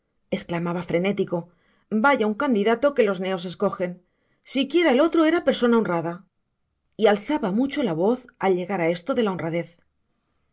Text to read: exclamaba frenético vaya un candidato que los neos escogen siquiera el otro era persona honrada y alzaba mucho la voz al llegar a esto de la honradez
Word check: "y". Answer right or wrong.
right